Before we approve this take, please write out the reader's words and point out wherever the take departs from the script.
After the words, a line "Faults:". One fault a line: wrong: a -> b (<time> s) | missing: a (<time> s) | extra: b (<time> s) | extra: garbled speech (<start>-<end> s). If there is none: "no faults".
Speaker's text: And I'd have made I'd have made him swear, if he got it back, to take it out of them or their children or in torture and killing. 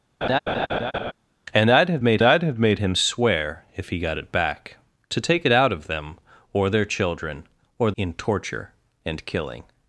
And I'd have made I'd have made him swear, if he got it back, to take it out of them or their children or in torture and killing.
Faults:
no faults